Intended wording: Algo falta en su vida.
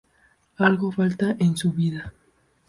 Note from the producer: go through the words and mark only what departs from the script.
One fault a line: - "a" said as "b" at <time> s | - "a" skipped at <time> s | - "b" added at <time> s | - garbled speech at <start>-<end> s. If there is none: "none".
none